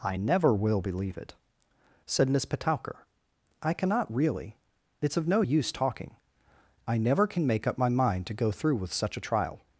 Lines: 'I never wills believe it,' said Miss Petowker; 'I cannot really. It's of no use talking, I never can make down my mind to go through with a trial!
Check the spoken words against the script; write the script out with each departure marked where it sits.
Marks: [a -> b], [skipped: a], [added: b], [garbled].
'I never [wills -> will] believe it,' said Miss Petowker; 'I cannot really. It's of no use talking, I never can make [down -> up] my mind to go through with [added: such] a trial!